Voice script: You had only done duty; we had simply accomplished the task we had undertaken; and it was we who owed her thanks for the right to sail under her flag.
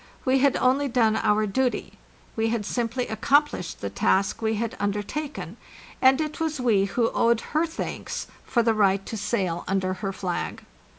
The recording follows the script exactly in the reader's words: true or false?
false